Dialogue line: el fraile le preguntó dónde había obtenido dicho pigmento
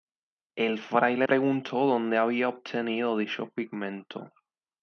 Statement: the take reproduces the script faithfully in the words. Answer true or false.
false